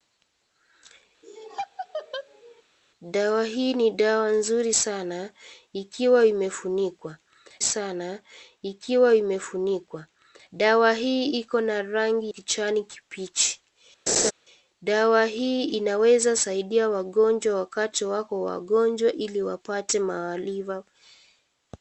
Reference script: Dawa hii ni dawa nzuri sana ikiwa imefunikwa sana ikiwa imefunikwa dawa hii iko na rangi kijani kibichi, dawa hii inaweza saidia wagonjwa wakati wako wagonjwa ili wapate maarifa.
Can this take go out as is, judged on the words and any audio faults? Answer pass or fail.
fail